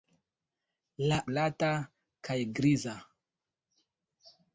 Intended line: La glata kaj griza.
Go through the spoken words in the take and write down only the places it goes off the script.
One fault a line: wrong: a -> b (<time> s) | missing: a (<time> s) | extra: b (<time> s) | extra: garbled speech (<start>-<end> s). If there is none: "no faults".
no faults